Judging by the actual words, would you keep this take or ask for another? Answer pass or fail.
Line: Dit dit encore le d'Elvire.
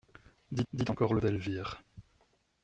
pass